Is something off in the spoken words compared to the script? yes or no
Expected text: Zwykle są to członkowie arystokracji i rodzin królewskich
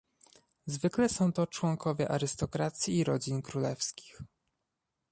no